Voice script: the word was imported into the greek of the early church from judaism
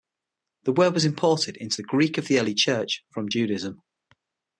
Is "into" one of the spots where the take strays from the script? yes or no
no